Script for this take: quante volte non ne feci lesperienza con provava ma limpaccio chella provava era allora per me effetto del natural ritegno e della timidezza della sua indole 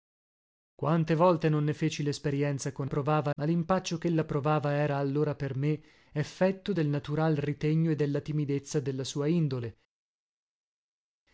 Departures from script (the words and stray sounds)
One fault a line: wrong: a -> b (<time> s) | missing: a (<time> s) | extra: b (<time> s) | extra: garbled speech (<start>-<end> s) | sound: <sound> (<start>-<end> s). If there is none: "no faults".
no faults